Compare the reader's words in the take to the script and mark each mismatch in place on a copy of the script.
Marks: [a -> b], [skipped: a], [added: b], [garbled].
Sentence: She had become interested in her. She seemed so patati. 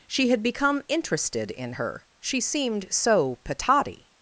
She had become interested in her. She seemed so patati.